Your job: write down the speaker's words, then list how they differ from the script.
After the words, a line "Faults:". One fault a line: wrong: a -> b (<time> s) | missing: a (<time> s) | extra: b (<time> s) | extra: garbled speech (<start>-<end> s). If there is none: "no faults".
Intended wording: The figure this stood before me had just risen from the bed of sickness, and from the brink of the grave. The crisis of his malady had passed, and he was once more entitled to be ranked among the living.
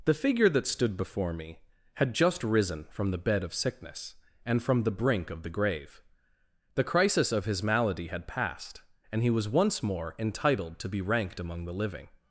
The figure that stood before me had just risen from the bed of sickness, and from the brink of the grave. The crisis of his malady had passed, and he was once more entitled to be ranked among the living.
Faults:
wrong: this -> that (0.5 s)